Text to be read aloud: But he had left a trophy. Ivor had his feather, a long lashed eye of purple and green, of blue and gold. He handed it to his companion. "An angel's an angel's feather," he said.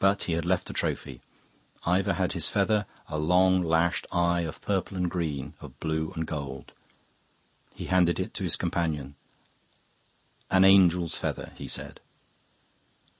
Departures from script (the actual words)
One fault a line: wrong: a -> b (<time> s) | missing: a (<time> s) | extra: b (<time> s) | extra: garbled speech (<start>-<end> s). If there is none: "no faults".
missing: an angel's (11.2 s)